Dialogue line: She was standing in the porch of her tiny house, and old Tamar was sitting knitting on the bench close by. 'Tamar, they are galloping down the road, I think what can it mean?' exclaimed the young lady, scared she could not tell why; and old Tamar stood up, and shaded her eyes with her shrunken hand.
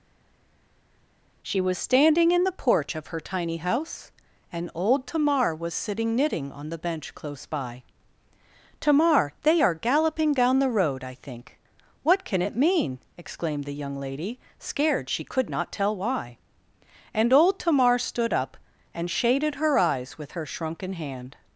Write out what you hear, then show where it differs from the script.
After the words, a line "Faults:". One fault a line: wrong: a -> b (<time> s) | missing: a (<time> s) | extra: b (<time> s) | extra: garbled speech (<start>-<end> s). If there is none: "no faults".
She was standing in the porch of her tiny house, and old Tamar was sitting knitting on the bench close by. 'Tamar, they are galloping down the road, I think what can it mean?' exclaimed the young lady, scared she could not tell why; and old Tamar stood up, and shaded her eyes with her shrunken hand.
Faults:
no faults